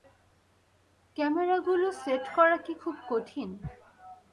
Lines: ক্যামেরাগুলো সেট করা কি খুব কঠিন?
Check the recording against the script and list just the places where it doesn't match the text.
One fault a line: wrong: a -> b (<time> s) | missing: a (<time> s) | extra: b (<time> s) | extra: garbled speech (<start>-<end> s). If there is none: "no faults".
no faults